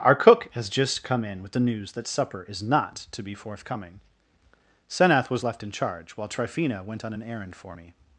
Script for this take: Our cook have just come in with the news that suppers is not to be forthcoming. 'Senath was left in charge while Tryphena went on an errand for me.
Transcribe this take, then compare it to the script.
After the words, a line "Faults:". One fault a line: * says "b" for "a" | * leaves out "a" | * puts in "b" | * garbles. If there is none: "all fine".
Our cook has just come in with the news that supper is not to be forthcoming. 'Senath was left in charge while Tryphena went on an errand for me.
Faults:
* says "has" for "have"
* says "supper" for "suppers"